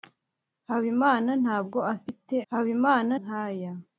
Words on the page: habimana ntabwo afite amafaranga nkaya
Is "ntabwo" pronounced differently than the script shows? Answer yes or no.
no